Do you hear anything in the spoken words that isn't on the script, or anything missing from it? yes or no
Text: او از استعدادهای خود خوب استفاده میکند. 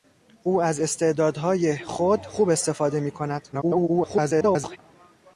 yes